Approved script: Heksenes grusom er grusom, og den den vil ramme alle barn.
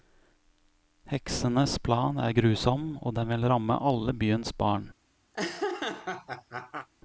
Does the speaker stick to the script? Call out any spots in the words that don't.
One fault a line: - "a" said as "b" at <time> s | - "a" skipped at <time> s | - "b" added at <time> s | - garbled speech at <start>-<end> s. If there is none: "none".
- "grusom" said as "plan" at 1.8 s
- "den" skipped at 3.3 s
- "byens" added at 4.1 s